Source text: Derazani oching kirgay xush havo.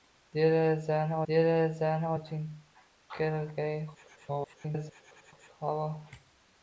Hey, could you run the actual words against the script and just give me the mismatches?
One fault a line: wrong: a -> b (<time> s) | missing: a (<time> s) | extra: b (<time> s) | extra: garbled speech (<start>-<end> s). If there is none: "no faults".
extra: derazani (1.3 s)
extra: garbled speech (3.9-5.3 s)